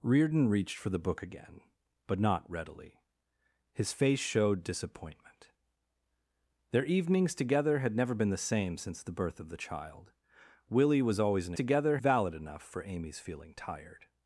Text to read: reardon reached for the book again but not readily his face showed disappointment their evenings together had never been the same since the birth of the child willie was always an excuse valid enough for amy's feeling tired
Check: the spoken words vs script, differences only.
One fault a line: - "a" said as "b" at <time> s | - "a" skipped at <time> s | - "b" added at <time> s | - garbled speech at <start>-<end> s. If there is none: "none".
- "excuse" said as "together" at 11.5 s